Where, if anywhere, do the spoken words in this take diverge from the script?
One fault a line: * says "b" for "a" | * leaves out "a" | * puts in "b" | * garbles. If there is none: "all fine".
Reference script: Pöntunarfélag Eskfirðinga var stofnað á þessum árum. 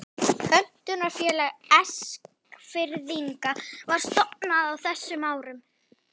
all fine